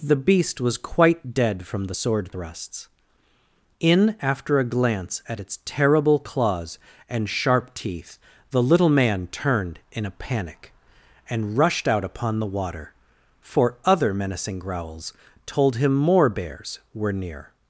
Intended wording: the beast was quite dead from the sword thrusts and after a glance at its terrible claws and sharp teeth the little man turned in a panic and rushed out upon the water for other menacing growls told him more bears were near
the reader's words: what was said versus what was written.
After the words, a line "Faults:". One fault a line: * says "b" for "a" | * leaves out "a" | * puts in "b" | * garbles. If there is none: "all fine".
the beast was quite dead from the sword thrusts in after a glance at its terrible claws and sharp teeth the little man turned in a panic and rushed out upon the water for other menacing growls told him more bears were near
Faults:
* says "in" for "and"